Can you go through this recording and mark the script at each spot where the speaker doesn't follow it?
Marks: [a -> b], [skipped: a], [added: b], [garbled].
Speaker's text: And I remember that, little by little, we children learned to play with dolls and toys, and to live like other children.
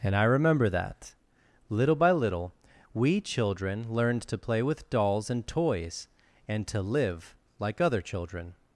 And I remember that, little by little, we children learned to play with dolls and toys, and to live like other children.